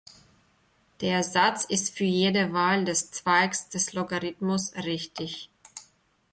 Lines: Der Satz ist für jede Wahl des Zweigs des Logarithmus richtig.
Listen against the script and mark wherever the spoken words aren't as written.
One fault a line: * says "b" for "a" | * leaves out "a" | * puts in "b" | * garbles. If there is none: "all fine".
all fine